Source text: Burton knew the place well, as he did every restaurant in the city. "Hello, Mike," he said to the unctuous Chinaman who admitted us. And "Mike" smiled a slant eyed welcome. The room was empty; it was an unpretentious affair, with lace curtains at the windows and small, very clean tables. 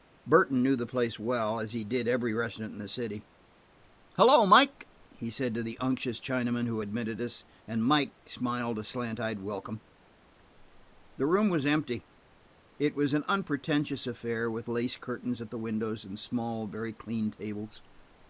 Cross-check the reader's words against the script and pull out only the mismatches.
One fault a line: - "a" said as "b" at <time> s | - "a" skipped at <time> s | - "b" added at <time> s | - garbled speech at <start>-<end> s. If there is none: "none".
none